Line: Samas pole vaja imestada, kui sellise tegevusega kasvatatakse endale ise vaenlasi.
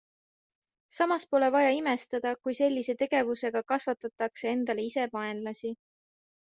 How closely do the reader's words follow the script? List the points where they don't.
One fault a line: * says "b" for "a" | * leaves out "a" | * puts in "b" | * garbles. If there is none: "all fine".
all fine